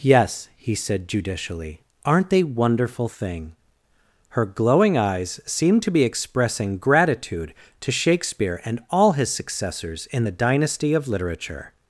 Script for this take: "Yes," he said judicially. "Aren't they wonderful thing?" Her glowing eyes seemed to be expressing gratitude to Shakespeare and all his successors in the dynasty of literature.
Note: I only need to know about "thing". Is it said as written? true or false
true